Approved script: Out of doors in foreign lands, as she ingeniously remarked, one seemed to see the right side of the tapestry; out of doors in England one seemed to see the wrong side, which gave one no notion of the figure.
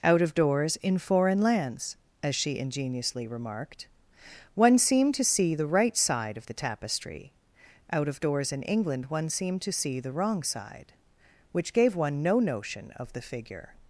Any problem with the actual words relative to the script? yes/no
no